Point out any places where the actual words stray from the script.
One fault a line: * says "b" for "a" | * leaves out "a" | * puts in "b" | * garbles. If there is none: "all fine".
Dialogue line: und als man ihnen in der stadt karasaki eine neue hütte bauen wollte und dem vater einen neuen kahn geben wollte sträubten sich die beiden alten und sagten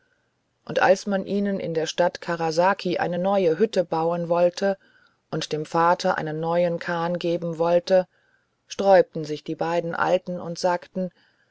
all fine